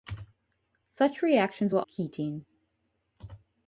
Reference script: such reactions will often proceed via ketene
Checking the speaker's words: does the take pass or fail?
fail